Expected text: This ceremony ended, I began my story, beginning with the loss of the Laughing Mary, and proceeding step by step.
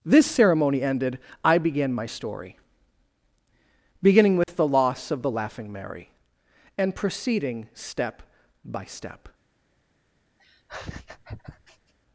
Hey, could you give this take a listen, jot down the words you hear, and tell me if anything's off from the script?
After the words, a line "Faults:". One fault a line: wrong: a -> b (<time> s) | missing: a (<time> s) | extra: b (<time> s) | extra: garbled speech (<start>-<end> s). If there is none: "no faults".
This ceremony ended, I began my story, beginning with the loss of the Laughing Mary, and proceeding step by step.
Faults:
no faults